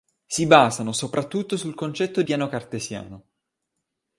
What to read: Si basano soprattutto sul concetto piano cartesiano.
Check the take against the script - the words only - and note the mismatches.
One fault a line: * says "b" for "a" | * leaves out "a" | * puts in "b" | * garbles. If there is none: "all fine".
all fine